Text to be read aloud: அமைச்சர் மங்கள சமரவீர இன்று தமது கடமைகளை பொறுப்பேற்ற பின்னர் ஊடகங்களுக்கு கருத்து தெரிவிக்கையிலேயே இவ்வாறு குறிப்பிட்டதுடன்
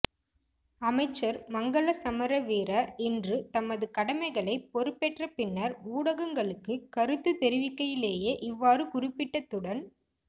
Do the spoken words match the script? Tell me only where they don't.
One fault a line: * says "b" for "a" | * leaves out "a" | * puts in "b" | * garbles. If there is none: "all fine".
all fine